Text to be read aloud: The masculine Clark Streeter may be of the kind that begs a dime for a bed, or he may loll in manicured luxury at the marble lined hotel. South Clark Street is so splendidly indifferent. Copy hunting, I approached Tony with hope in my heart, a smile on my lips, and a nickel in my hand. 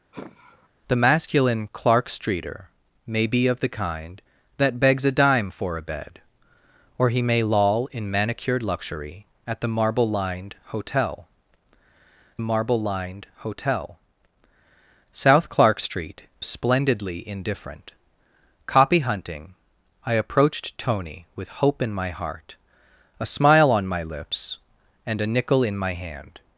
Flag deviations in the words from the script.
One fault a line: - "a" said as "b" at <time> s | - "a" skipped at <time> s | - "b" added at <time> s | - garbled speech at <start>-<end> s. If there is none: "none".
- "marble lined hotel" added at 12.4 s
- "is so" skipped at 16.3 s